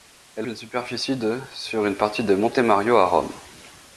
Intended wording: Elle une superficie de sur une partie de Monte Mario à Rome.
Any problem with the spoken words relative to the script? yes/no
no